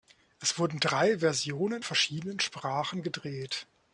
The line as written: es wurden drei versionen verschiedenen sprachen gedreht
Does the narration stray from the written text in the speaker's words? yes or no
no